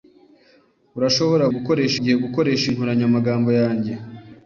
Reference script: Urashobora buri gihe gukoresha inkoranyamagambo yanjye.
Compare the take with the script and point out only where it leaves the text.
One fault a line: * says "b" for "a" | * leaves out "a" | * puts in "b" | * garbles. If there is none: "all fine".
* says "gukoresha" for "buri"